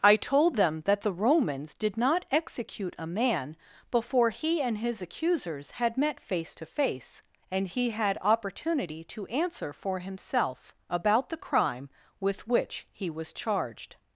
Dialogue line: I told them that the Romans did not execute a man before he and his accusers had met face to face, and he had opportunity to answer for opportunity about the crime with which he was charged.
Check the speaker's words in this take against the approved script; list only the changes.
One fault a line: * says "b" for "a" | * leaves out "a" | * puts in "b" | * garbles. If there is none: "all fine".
* says "himself" for "opportunity"